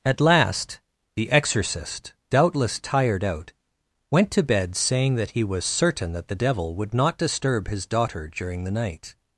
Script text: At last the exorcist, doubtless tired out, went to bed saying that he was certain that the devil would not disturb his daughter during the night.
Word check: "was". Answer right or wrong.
right